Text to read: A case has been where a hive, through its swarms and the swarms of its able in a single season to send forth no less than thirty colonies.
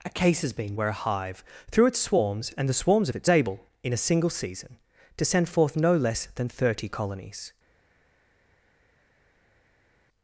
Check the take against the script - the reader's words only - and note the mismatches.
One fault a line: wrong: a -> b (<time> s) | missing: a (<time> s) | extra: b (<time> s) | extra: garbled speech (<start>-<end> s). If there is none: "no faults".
no faults